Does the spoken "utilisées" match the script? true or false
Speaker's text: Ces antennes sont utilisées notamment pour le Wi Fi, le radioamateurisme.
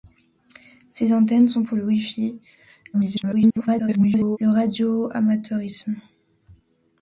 false